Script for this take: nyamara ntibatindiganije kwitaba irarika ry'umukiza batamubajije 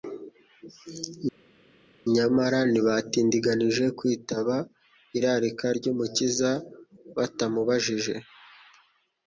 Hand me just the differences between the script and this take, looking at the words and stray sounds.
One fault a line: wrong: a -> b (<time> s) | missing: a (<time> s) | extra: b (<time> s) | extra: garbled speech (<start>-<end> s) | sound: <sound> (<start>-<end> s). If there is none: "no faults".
no faults